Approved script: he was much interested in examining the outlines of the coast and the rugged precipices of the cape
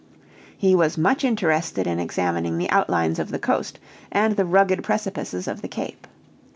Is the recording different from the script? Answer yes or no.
no